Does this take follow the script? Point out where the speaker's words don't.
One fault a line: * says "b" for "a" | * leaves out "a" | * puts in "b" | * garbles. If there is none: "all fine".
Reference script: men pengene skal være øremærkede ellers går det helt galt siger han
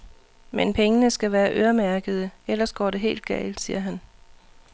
all fine